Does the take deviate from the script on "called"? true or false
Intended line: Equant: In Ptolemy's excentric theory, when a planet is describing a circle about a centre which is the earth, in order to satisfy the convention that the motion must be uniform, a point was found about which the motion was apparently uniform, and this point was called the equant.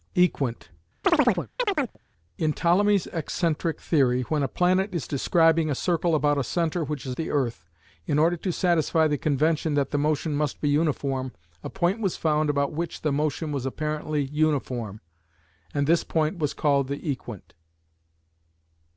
false